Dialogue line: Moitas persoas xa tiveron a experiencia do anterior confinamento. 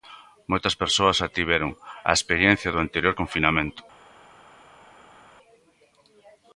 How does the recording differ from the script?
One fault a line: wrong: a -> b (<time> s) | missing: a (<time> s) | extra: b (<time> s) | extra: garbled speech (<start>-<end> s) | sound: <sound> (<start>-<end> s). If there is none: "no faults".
no faults